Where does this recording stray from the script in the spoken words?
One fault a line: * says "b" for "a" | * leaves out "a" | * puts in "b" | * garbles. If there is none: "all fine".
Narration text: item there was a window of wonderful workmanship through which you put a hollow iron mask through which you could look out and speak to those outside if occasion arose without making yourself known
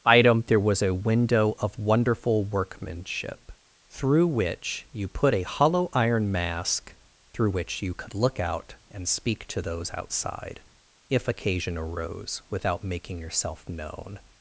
all fine